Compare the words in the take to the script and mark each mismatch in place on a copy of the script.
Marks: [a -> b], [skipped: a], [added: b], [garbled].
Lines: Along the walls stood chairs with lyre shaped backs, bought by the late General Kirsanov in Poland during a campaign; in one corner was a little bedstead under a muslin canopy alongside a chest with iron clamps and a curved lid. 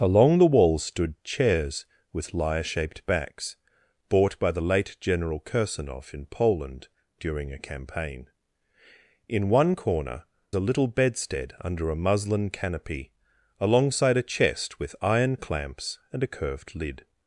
Along the walls stood chairs with lyre shaped backs, bought by the late General Kirsanov in Poland during a campaign; in one corner [skipped: was] a little bedstead under a muslin canopy alongside a chest with iron clamps and a curved lid.